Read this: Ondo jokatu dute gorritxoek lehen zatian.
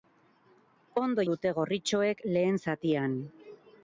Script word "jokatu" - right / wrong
wrong